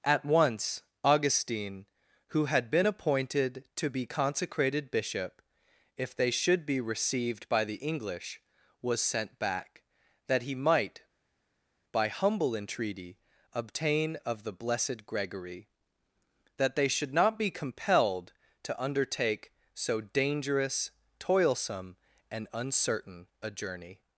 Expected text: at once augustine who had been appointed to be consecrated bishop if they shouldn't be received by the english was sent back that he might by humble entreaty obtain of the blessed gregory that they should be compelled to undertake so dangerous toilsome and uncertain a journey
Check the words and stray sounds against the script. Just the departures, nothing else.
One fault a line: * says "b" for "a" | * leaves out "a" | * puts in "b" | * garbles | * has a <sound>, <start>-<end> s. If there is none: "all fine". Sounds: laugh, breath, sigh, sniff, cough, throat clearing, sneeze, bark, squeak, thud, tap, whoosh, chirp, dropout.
* says "should" for "shouldn't"
* puts in "not"